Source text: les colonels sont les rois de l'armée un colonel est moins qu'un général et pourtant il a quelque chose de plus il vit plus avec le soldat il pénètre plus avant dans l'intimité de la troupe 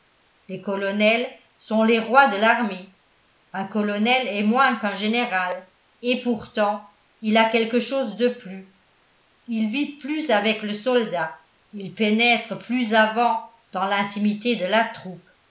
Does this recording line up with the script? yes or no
yes